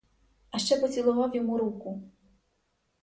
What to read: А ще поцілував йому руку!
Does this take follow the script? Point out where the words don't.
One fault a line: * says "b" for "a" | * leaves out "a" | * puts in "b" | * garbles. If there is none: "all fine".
all fine